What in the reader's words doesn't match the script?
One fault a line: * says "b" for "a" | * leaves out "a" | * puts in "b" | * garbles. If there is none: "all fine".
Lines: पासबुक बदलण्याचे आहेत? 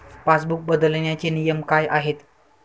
* puts in "नियम काय"